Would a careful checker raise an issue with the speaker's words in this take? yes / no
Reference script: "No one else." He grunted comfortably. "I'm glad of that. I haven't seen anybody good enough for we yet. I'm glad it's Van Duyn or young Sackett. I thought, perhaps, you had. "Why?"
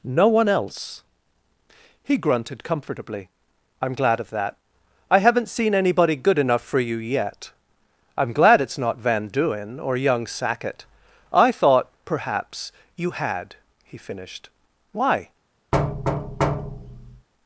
yes